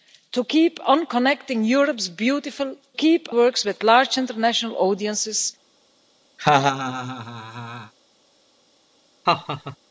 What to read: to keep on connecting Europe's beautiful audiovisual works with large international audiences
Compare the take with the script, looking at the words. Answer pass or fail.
fail